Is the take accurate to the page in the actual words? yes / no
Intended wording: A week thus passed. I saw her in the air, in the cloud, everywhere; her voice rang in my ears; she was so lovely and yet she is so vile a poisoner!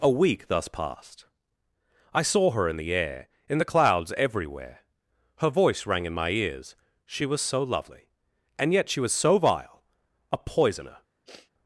no